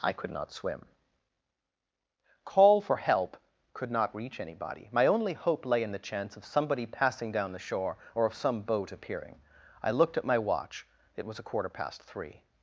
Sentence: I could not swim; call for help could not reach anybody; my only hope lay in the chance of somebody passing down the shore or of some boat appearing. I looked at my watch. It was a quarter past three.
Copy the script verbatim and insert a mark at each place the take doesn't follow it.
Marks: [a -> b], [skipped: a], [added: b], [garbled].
I could not swim; call for help could not reach anybody; my only hope lay in the chance of somebody passing down the shore or of some boat appearing. I looked at my watch. It was a quarter past three.